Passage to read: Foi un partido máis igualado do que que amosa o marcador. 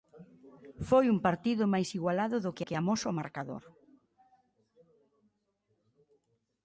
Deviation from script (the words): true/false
false